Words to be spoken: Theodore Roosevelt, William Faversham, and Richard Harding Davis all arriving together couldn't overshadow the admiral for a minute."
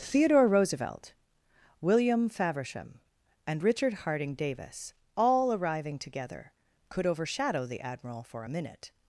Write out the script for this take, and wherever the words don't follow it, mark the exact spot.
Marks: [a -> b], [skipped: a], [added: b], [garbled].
Theodore Roosevelt, William Faversham, and Richard Harding Davis all arriving together [couldn't -> could] overshadow the admiral for a minute."